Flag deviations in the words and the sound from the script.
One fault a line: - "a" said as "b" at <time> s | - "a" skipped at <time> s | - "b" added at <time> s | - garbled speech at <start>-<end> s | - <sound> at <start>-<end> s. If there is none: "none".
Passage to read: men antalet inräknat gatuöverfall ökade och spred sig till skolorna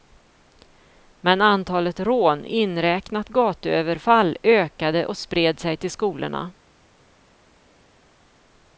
- "rån" added at 2.0 s